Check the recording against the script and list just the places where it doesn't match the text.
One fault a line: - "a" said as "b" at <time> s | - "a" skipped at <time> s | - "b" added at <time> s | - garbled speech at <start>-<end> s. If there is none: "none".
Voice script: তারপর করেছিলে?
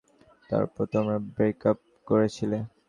- "তোমরা ব্রেকাপ" added at 0.9 s